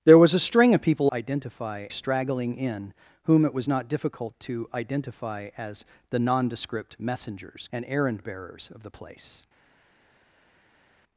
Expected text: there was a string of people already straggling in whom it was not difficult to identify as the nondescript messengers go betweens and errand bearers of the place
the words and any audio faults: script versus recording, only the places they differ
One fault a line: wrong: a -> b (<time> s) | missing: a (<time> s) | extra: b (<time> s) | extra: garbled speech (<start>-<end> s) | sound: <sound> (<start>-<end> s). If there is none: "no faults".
wrong: already -> identify (1.1 s)
missing: go betweens (7.7 s)